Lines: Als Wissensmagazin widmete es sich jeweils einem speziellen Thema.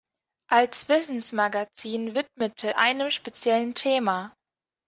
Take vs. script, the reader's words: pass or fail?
fail